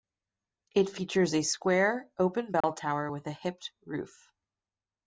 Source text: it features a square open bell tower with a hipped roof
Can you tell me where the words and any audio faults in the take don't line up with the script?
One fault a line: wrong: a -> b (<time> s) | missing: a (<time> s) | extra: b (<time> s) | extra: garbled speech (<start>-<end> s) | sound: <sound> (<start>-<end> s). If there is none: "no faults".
sound: dropout (2.6-2.6 s)